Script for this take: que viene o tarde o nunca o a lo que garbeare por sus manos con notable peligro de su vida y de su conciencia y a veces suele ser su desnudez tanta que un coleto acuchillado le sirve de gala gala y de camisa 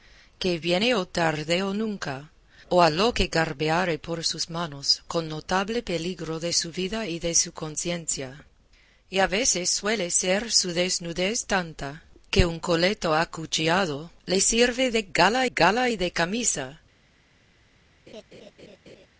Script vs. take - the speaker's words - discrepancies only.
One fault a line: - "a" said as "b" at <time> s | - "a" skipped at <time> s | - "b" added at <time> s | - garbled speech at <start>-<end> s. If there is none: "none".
none